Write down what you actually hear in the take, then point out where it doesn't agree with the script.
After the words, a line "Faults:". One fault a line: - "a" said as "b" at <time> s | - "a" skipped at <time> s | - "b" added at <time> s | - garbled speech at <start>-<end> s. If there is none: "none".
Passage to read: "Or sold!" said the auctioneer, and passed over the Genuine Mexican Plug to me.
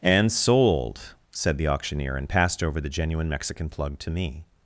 "And sold!" said the auctioneer, and passed over the Genuine Mexican Plug to me.
Faults:
- "Or" said as "And" at 0.0 s